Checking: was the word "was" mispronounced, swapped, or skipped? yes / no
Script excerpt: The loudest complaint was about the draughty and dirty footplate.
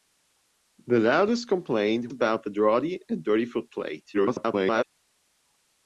yes